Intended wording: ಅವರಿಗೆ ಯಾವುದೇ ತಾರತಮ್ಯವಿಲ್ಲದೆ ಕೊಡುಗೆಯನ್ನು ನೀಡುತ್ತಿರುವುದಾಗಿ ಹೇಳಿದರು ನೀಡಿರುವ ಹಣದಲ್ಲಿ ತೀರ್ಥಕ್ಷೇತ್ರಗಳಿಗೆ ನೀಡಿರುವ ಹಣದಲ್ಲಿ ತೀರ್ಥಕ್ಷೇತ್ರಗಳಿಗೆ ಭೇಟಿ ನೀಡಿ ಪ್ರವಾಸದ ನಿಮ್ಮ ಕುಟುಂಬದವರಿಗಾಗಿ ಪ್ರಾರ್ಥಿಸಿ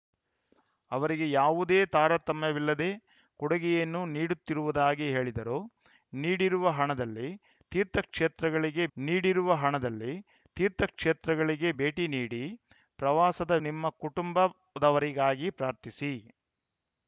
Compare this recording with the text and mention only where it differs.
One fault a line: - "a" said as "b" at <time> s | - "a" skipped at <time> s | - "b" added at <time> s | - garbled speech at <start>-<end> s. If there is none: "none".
none